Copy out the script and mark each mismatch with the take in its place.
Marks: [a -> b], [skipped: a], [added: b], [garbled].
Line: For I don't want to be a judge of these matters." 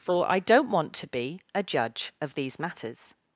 For I don't want to be a judge of these matters."